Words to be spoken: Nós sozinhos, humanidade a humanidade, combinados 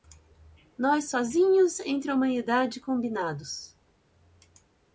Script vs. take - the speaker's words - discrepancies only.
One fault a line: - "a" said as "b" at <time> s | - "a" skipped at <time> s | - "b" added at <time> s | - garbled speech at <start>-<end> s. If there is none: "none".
- "humanidade" said as "entre" at 1.8 s